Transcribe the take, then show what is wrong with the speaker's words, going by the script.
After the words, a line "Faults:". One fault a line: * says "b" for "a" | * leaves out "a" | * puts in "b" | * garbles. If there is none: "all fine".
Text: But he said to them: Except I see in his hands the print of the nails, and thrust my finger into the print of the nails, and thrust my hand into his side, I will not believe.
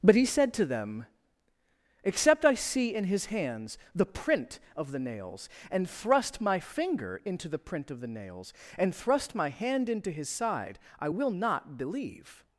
But he said to them: Except I see in his hands the print of the nails, and thrust my finger into the print of the nails, and thrust my hand into his side, I will not believe.
Faults:
all fine